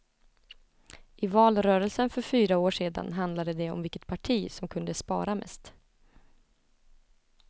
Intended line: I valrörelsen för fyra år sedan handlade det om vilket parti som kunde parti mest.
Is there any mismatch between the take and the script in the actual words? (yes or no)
yes